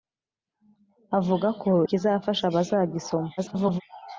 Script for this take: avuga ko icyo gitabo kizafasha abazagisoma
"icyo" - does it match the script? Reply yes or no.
no